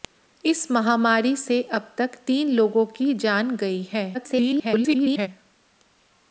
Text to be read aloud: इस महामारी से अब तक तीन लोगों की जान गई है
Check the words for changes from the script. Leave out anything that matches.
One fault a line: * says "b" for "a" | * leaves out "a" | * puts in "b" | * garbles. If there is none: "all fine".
* garbles